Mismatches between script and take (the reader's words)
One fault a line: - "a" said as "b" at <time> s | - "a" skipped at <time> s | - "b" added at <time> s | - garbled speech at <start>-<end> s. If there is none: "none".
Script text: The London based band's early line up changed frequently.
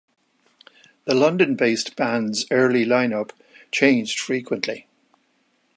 none